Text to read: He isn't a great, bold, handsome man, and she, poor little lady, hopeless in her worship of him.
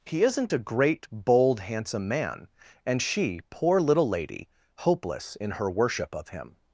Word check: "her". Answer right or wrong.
right